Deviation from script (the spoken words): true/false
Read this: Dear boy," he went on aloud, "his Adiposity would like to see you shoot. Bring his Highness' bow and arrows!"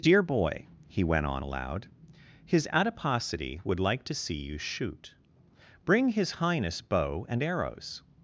false